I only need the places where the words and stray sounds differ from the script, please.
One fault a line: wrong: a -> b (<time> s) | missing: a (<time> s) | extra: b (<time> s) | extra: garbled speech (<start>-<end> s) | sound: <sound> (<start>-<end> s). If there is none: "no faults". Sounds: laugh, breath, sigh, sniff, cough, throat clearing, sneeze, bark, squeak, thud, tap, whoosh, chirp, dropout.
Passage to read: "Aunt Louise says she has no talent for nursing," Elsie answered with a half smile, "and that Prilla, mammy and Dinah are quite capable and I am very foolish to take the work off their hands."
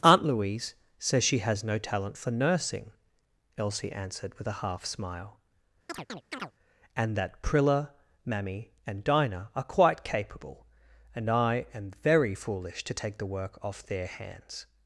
sound: chirp (5.9-6.5 s)